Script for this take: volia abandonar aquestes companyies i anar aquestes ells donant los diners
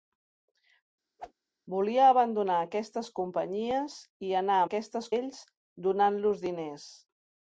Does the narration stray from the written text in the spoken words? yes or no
no